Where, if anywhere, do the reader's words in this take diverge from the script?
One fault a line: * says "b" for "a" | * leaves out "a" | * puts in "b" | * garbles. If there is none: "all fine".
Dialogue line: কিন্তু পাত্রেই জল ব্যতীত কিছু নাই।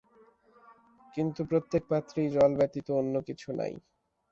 * puts in "প্রত্যেক"
* puts in "অন্য"